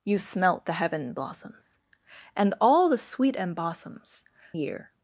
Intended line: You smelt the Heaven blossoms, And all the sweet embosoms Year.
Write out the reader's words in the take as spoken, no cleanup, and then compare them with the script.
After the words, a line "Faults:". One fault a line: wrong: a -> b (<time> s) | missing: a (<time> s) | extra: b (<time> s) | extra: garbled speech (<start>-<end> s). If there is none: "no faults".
You smelt the Heaven blossoms, And all the sweet embosoms Year.
Faults:
no faults